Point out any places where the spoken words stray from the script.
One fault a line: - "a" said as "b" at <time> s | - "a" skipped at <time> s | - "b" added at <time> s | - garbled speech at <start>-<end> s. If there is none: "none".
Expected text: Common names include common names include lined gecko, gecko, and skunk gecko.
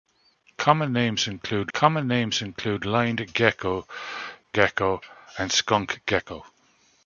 none